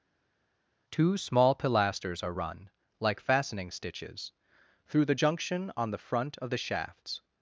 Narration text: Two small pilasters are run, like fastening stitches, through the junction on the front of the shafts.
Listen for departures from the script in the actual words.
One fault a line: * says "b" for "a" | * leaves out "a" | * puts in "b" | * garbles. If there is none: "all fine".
all fine